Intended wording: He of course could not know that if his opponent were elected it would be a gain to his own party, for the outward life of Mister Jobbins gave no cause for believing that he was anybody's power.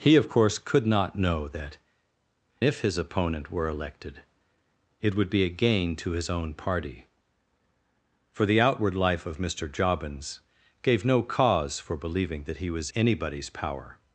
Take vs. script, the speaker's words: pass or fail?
pass